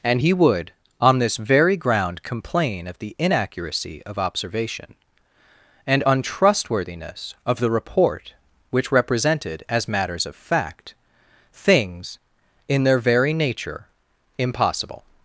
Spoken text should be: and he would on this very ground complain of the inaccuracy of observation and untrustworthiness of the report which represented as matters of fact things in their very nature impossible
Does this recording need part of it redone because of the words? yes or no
no